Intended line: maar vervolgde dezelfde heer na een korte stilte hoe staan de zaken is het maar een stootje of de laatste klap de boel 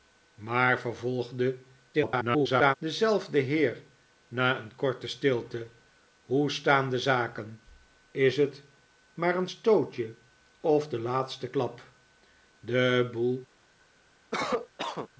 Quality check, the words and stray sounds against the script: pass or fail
fail